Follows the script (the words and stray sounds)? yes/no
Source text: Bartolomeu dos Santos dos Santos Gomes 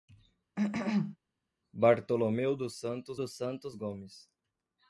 no